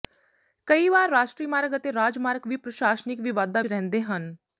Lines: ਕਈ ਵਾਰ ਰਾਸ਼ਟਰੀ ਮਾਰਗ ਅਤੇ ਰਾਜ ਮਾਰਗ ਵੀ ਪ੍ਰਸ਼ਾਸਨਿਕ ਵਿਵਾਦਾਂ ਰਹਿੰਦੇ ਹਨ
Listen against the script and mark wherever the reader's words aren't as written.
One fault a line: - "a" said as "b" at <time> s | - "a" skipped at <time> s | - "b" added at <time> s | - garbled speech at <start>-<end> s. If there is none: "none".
none